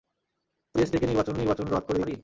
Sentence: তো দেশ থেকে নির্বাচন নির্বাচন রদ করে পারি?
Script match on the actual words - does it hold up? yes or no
yes